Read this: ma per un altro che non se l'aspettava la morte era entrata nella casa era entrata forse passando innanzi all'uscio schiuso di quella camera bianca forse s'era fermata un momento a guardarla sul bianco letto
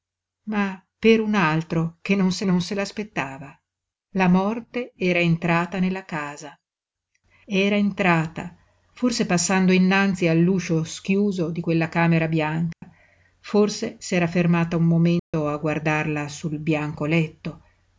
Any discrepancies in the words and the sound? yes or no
yes